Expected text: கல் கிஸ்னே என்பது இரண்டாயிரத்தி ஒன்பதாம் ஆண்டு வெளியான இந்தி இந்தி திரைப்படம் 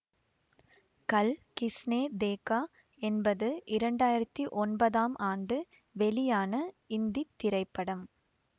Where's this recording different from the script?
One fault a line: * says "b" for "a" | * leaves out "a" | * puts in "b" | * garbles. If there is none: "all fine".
* puts in "தேகா"
* leaves out "இந்தி"